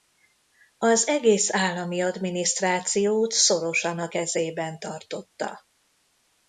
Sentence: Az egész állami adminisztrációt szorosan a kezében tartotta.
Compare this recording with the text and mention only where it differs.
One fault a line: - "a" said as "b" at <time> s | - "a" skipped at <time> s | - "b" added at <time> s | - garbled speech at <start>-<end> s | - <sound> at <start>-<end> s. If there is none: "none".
none